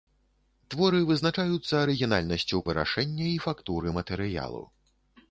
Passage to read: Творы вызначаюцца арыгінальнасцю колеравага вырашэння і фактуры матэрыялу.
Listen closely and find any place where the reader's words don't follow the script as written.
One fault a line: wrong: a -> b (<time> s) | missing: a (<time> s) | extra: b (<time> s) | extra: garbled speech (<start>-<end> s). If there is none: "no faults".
missing: колеравага (2.6 s)